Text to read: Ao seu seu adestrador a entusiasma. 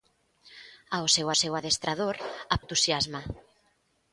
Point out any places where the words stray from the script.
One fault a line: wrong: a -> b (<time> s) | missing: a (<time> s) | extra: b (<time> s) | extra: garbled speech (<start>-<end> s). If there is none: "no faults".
no faults